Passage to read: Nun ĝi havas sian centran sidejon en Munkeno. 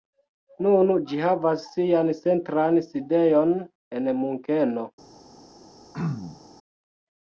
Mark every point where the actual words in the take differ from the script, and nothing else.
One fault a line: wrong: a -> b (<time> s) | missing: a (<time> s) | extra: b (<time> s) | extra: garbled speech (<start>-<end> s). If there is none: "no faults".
no faults